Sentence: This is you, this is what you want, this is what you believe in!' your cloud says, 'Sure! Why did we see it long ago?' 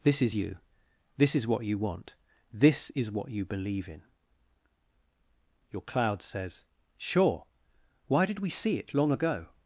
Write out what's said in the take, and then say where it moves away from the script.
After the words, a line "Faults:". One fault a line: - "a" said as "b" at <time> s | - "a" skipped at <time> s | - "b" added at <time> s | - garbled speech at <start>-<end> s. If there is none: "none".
This is you, this is what you want, this is what you believe in!' your cloud says, 'Sure! Why did we see it long ago?'
Faults:
none